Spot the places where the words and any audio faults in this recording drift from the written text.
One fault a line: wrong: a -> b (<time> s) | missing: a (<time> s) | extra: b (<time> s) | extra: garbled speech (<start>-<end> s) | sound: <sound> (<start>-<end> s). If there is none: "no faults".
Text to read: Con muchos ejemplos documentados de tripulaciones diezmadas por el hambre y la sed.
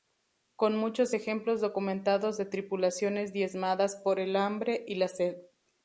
no faults